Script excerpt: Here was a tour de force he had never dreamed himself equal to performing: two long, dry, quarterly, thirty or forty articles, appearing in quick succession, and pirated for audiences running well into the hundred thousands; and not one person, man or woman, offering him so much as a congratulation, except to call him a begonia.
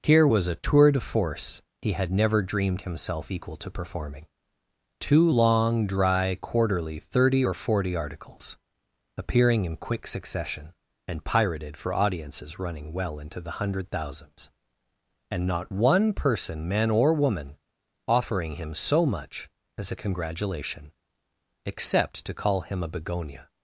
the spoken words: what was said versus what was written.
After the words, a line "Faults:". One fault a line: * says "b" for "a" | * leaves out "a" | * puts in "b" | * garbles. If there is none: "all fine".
Here was a tour de force he had never dreamed himself equal to performing: two long, dry, quarterly, thirty or forty articles, appearing in quick succession, and pirated for audiences running well into the hundred thousands; and not one person, man or woman, offering him so much as a congratulation, except to call him a begonia.
Faults:
all fine